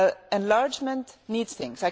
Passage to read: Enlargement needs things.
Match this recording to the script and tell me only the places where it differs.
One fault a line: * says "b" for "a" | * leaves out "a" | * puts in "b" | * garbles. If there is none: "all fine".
all fine